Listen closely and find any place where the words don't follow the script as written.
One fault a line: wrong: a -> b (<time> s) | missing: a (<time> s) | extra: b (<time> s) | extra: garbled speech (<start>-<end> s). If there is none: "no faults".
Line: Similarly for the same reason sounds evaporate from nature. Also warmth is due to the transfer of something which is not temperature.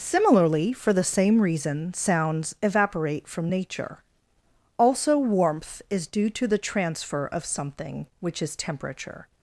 missing: not (8.5 s)